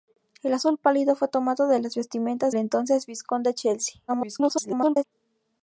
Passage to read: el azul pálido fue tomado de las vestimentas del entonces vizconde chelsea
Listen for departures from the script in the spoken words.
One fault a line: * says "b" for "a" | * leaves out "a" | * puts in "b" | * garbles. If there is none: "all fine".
* leaves out "del"
* garbles